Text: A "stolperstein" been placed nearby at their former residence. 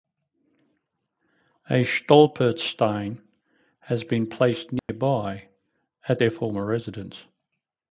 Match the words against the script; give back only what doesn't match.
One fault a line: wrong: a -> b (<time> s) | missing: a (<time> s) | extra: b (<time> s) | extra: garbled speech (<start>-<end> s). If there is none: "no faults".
extra: has (3.8 s)